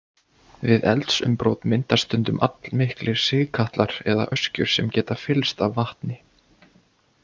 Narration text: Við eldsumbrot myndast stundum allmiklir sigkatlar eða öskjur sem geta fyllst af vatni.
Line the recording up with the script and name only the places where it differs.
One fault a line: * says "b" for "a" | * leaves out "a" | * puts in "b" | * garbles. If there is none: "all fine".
all fine